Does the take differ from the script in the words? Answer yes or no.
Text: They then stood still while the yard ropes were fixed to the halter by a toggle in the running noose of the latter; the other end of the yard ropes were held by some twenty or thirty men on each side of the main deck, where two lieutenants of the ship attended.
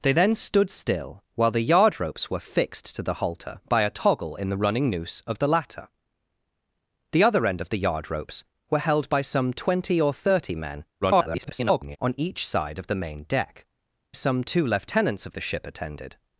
yes